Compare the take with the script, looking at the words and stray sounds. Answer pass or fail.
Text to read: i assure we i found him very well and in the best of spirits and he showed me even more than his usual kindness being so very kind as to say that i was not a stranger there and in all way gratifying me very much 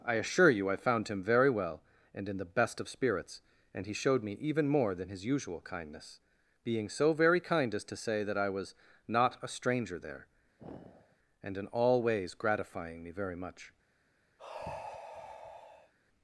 fail